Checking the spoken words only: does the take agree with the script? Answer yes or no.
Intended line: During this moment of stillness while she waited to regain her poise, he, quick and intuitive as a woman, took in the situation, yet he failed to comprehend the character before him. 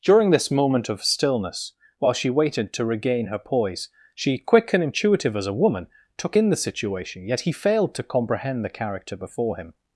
no